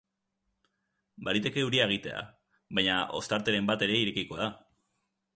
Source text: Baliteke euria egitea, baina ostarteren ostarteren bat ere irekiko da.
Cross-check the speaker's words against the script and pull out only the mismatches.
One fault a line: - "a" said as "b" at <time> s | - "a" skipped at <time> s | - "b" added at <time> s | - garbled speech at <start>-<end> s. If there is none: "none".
- "ostarteren" skipped at 3.7 s